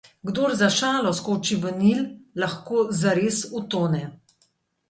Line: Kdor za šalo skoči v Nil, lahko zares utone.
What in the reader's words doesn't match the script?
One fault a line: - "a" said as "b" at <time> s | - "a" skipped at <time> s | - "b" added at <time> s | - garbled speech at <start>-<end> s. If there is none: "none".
none